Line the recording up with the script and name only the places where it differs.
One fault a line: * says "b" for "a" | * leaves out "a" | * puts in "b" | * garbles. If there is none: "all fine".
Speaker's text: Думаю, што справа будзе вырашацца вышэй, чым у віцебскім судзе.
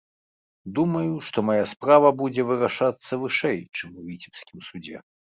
* puts in "мая"